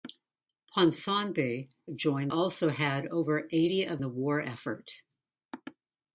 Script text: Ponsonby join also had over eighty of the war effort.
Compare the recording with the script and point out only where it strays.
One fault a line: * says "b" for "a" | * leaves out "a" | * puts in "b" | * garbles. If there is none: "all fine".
all fine